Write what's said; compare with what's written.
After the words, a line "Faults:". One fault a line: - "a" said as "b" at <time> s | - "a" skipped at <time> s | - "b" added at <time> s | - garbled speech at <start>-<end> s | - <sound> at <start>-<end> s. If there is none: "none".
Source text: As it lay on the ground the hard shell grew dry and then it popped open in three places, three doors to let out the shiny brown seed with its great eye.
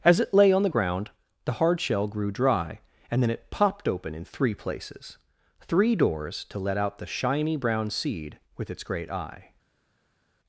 As it lay on the ground the hard shell grew dry and then it popped open in three places, three doors to let out the shiny brown seed with its great eye.
Faults:
none